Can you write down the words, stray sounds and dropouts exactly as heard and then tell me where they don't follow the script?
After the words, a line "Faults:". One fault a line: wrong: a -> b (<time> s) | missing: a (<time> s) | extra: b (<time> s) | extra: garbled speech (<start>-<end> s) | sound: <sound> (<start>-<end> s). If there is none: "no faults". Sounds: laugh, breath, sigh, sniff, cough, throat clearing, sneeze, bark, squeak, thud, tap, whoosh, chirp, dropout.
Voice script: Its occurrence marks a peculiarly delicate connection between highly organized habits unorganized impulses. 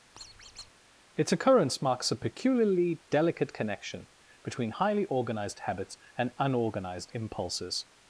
Its occurrence marks a peculiarly delicate connection between highly organized habits and unorganized impulses.
Faults:
sound: squeak (0.2-0.7 s)
extra: and (6.2 s)